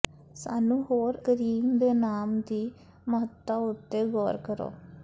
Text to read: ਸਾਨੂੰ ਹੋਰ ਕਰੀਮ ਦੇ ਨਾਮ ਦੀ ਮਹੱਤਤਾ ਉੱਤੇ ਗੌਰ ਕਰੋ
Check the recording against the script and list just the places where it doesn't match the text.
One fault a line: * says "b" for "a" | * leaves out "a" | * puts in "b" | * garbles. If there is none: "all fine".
all fine